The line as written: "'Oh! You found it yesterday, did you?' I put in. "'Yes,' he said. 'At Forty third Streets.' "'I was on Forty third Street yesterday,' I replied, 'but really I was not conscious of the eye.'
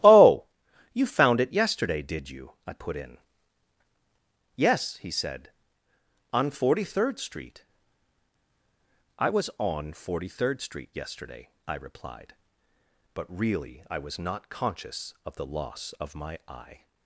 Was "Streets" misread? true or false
true